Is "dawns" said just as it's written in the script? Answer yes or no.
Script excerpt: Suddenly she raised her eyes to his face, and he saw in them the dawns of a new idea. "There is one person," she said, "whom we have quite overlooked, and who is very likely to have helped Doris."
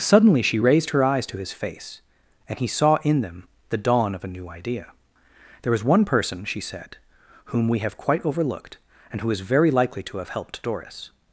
no